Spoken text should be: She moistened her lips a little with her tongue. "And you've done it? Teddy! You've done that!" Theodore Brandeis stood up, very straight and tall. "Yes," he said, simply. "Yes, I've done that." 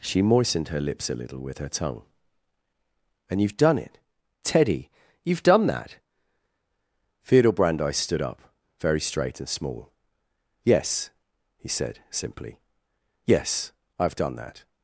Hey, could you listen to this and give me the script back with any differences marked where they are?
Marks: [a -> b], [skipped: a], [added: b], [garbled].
She moistened her lips a little with her tongue. "And you've done it? Teddy! You've done that!" Theodore Brandeis stood up, very straight and [tall. -> small] "Yes," he said, simply. "Yes, I've done that."